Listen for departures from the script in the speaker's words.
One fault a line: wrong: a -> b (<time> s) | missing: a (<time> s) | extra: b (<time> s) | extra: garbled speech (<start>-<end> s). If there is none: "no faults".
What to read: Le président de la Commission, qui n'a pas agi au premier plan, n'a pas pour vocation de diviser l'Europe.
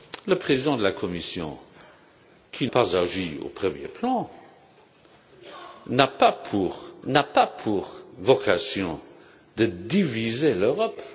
missing: n'a (2.7 s)
extra: n'a pas pour (7.0 s)